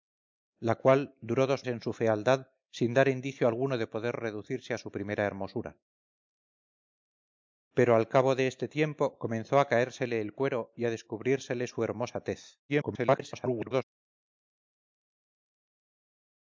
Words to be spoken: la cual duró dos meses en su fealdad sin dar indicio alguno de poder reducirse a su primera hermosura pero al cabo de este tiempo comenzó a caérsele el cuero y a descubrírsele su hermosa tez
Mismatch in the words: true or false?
true